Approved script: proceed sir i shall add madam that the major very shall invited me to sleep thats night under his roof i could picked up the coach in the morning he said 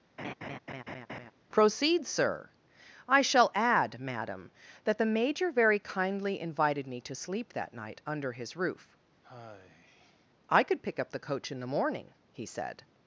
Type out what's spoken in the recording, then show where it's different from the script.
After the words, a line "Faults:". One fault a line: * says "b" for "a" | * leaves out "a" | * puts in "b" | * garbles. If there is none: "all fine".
proceed sir i shall add madam that the major very kindly invited me to sleep that night under his roof i could pick up the coach in the morning he said
Faults:
* says "kindly" for "shall"
* says "that" for "thats"
* says "pick" for "picked"